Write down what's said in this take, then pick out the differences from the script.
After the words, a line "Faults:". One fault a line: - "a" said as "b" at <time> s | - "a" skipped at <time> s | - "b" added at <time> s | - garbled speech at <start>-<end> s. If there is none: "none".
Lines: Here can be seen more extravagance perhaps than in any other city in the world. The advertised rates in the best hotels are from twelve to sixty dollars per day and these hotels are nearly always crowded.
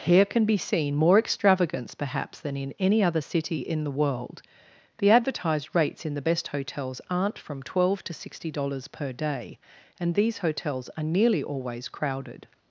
Here can be seen more extravagance perhaps than in any other city in the world. The advertised rates in the best hotels aren't from twelve to sixty dollars per day and these hotels are nearly always crowded.
Faults:
- "are" said as "aren't" at 7.1 s